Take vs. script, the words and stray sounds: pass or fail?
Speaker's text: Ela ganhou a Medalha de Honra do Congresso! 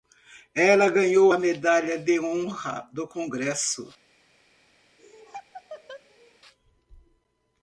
fail